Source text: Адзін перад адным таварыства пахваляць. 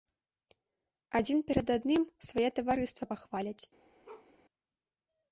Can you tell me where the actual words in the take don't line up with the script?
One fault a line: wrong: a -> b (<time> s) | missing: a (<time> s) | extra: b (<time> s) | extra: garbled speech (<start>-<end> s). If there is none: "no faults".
extra: свае (2.3 s)